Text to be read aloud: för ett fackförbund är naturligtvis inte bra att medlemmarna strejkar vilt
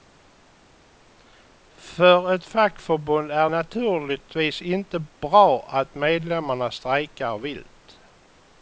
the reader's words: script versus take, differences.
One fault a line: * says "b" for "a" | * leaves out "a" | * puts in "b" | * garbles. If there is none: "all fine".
all fine